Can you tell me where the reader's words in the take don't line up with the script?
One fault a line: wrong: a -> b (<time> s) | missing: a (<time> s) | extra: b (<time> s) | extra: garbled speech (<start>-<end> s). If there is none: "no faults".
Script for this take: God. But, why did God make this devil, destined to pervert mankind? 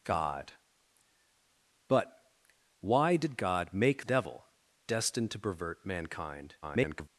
missing: this (4.0 s)
extra: garbled speech (6.6-7.1 s)